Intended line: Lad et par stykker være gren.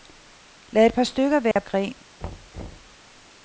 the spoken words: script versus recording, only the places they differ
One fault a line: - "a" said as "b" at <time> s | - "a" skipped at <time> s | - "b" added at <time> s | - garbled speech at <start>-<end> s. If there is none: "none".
none